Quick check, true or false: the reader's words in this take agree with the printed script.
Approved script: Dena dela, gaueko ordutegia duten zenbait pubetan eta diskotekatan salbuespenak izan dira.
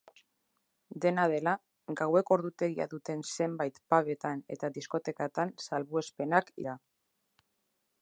false